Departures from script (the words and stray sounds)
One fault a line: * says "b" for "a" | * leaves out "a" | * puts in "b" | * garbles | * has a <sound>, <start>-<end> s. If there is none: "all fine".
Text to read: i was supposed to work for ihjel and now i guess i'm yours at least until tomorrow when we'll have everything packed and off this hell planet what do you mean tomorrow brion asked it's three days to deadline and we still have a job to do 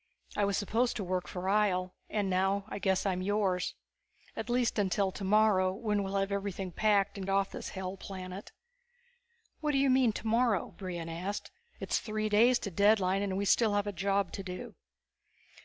all fine